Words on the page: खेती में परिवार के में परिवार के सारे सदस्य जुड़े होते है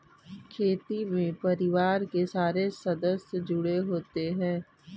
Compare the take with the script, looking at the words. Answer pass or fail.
fail